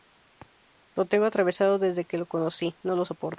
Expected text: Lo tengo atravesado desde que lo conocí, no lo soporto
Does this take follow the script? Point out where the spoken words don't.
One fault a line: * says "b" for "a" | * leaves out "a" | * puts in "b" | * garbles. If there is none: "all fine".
all fine